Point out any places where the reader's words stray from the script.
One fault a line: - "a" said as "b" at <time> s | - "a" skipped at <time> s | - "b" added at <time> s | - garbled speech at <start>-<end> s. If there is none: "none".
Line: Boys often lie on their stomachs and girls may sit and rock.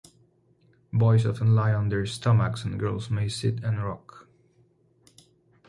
none